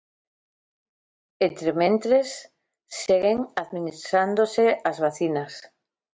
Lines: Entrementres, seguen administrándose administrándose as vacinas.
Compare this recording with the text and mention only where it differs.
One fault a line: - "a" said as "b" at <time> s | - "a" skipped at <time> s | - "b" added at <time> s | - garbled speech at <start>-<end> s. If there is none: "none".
- "administrándose" skipped at 4.7 s